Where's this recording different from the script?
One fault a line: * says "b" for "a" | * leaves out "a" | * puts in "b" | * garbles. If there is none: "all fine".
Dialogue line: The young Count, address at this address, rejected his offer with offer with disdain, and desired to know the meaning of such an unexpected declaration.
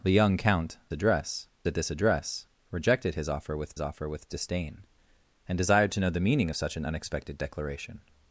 all fine